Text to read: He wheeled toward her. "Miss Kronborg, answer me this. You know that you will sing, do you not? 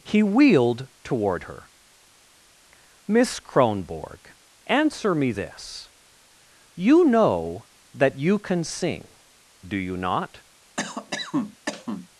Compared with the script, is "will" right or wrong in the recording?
wrong